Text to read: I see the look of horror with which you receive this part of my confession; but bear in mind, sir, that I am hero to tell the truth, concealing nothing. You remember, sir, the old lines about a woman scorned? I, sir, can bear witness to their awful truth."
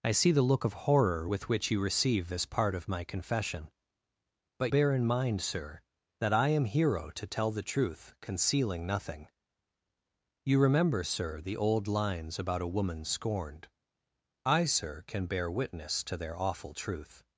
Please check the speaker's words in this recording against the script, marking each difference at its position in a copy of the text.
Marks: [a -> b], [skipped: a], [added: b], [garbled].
I see the look of horror with which you receive this part of my confession; but bear in mind, sir, that I am hero to tell the truth, concealing nothing. You remember, sir, the old lines about a woman scorned? I, sir, can bear witness to their awful truth."